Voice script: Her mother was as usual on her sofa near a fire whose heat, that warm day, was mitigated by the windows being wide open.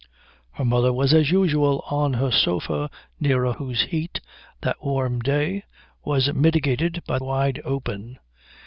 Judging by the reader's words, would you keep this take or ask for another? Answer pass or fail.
fail